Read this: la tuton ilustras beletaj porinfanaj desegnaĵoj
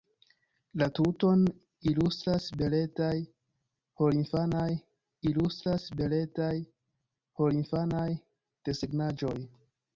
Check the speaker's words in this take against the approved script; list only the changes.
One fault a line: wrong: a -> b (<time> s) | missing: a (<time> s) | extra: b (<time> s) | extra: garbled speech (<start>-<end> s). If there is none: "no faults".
extra: ilustras beletaj porinfanaj (5.3 s)